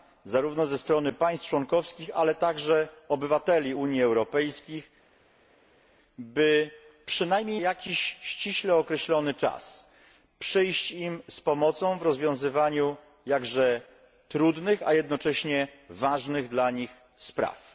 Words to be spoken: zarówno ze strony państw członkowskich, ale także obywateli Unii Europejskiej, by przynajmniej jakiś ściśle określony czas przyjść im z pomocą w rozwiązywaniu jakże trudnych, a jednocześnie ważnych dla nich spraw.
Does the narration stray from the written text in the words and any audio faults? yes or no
no